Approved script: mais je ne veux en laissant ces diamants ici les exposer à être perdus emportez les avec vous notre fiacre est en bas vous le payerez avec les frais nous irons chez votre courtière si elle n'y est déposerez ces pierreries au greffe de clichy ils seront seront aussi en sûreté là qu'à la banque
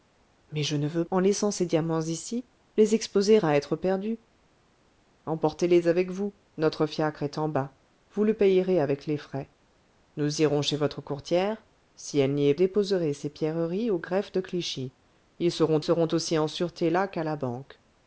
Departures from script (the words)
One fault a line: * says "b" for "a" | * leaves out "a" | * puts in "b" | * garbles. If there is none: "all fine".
all fine